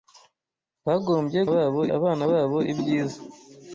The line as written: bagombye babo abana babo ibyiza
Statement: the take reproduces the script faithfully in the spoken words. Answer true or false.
true